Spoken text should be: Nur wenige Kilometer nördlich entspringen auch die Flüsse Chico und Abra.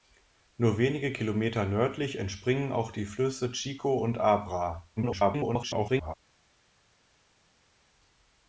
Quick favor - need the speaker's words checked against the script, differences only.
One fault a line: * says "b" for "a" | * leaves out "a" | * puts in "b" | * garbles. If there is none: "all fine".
* garbles